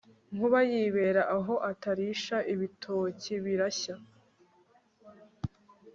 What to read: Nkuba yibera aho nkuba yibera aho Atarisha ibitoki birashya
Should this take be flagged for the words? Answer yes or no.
yes